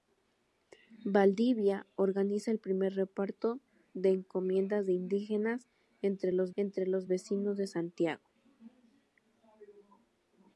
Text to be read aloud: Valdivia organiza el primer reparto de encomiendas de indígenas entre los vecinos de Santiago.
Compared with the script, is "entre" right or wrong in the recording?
right